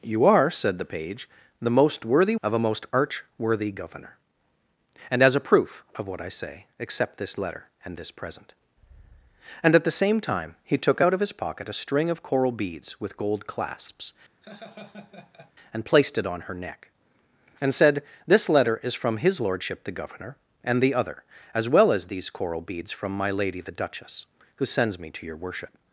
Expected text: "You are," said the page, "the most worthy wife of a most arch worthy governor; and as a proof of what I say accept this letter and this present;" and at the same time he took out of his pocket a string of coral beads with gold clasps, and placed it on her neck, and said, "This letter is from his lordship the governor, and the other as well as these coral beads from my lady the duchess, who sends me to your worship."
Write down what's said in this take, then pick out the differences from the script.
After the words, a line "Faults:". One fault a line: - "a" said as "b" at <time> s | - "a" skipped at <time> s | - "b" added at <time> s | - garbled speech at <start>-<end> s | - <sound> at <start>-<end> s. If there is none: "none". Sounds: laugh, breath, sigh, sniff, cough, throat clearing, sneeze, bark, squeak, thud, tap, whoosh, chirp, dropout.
"You are," said the page, "the most worthy of a most arch worthy governor; and as a proof of what I say accept this letter and this present;" and at the same time he took out of his pocket a string of coral beads with gold clasps, and placed it on her neck, and said, "This letter is from his lordship the governor, and the other as well as these coral beads from my lady the duchess, who sends me to your worship."
Faults:
- "wife" skipped at 2.4 s
- laugh at 14.4-15.5 s